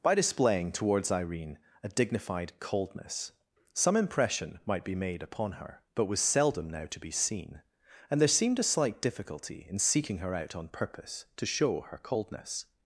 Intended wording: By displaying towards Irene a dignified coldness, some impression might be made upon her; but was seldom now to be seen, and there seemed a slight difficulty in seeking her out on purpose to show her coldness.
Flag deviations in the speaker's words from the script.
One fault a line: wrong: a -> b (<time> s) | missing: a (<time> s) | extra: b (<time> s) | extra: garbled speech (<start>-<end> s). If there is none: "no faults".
no faults